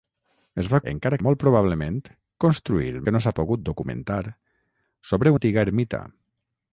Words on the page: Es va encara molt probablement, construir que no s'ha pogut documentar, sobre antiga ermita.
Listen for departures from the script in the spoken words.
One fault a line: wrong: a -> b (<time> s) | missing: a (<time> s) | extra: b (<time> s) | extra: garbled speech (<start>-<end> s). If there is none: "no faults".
no faults